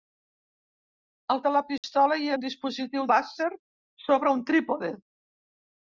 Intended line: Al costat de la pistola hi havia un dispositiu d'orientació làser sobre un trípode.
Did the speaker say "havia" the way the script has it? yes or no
no